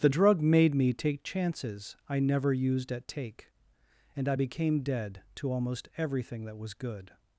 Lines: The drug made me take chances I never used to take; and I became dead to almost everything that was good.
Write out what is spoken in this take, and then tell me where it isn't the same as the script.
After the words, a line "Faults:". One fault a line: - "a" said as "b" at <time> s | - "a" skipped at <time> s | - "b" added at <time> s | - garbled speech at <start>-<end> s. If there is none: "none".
The drug made me take chances I never used at take; and I became dead to almost everything that was good.
Faults:
- "to" said as "at" at 2.9 s